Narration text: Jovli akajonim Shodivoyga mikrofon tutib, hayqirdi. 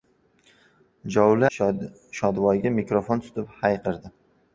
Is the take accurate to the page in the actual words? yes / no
no